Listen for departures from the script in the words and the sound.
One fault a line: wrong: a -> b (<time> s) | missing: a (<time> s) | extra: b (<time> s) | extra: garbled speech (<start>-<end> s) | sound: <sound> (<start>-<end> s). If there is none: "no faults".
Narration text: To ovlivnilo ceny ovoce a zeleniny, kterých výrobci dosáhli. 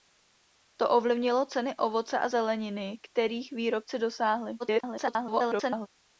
extra: garbled speech (4.6-5.9 s)